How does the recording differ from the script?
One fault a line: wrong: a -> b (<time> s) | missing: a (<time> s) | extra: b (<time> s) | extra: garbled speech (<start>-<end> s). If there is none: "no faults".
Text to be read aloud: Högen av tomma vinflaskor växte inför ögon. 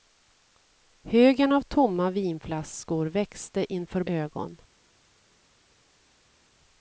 no faults